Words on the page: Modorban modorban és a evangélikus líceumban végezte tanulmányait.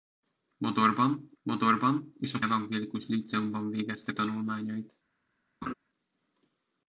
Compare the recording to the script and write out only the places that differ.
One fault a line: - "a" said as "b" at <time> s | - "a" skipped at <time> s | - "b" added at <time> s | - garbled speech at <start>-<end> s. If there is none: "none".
none